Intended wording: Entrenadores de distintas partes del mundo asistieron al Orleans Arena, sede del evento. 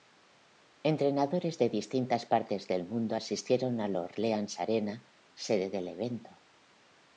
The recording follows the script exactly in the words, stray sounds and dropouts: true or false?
true